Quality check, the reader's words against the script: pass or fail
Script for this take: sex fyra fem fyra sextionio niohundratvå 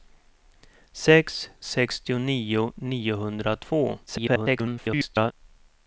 fail